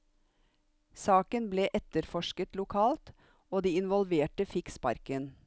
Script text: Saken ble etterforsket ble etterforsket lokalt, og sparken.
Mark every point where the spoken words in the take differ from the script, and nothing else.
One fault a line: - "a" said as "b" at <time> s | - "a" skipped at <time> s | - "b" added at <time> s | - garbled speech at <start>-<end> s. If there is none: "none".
- "ble etterforsket lokalt og" said as "lokalt og de involverte fikk" at 2.6 s